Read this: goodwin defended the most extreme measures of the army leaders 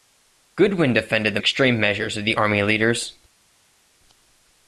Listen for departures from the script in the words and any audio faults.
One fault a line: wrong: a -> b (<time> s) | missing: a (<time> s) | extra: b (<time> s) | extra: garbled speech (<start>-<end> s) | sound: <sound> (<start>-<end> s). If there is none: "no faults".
missing: most (1.4 s)